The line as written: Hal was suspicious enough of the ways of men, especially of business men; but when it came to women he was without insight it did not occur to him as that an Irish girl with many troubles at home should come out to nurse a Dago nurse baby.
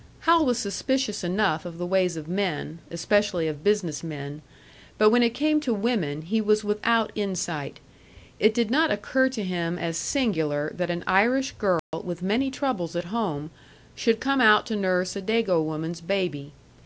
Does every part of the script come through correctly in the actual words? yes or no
no